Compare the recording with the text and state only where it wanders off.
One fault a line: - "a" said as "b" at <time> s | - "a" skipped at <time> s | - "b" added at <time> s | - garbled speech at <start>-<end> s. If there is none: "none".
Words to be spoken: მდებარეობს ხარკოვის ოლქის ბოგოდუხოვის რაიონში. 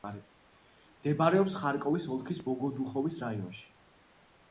none